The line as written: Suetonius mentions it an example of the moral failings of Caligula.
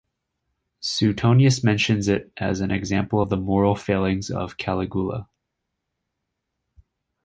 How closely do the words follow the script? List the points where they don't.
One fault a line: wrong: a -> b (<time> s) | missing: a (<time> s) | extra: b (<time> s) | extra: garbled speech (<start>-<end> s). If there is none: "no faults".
extra: as (2.4 s)